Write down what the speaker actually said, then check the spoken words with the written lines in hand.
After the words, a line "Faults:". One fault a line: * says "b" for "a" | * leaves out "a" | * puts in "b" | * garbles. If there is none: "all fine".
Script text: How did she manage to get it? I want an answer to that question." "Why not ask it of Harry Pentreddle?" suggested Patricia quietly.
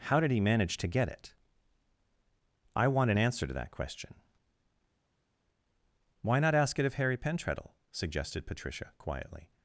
How did he manage to get it? I want an answer to that question." "Why not ask it of Harry Pentreddle?" suggested Patricia quietly.
Faults:
* says "he" for "she"